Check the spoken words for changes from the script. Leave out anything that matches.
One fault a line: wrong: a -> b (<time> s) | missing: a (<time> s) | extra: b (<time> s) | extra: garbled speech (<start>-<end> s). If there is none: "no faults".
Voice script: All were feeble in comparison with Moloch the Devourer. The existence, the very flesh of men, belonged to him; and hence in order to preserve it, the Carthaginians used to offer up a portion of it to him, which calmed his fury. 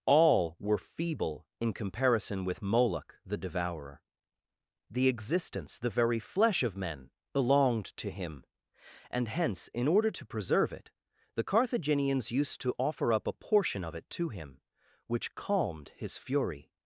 no faults